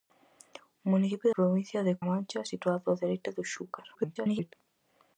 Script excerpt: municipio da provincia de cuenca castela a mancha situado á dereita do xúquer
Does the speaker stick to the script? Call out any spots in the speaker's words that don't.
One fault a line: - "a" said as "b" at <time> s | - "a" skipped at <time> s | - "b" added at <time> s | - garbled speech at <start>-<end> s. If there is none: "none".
- "da" skipped at 1.3 s
- "cuenca castela" skipped at 1.9 s
- garbled speech at 3.9-4.5 s